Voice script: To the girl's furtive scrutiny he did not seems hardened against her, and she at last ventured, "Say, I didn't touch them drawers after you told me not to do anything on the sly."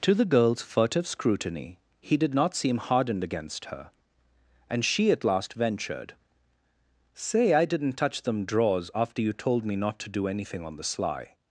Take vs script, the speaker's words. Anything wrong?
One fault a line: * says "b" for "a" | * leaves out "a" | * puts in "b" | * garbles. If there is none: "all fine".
* says "seem" for "seems"